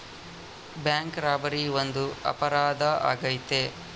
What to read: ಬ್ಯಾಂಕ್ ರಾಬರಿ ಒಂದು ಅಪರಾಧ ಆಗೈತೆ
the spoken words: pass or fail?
pass